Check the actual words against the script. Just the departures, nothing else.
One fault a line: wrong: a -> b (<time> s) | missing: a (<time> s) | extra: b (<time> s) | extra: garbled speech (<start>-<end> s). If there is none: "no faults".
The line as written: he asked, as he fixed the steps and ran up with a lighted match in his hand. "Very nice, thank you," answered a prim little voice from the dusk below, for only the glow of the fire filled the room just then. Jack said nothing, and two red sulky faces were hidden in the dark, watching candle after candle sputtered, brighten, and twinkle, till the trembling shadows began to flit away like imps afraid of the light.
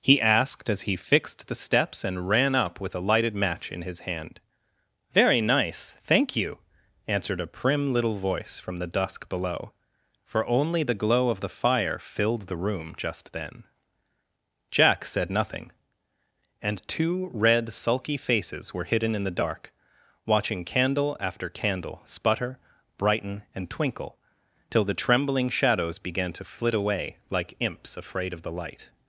wrong: sputtered -> sputter (22.1 s)